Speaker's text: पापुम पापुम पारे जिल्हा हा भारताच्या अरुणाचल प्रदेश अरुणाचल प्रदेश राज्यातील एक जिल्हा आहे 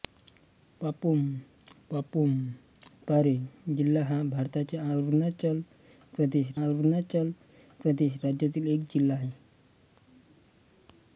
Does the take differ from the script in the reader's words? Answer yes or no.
no